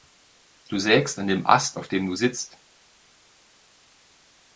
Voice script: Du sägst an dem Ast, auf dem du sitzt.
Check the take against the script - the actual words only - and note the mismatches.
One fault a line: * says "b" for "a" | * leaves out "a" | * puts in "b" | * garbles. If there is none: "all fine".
all fine